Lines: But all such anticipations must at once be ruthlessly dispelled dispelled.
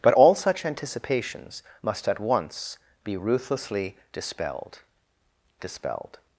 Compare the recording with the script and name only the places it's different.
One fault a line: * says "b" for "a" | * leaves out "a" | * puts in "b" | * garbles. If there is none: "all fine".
all fine